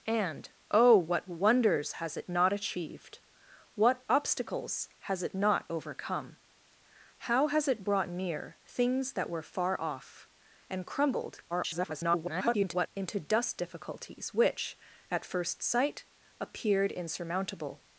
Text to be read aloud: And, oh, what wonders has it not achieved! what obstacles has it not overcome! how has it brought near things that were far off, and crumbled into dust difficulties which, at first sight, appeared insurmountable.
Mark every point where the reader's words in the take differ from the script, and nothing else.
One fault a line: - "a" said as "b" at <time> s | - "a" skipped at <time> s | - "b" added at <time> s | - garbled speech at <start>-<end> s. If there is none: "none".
- garbled speech at 11.5-12.9 s